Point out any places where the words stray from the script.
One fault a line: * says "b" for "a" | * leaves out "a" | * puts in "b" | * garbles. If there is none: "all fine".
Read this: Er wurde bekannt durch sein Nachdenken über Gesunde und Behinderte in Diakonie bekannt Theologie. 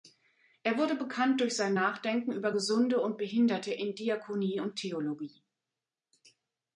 * says "und" for "bekannt"